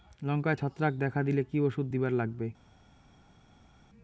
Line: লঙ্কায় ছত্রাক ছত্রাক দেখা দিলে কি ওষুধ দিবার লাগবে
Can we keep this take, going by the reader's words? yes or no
no